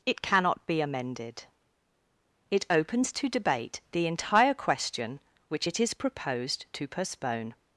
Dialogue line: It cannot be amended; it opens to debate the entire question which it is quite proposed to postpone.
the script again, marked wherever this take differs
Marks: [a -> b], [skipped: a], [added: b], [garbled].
It cannot be amended; it opens to debate the entire question which it is [skipped: quite] proposed to postpone.